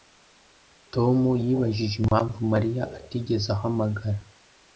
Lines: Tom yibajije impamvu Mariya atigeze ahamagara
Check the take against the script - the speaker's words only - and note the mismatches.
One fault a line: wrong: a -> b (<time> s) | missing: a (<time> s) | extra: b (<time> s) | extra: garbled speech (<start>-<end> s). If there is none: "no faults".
no faults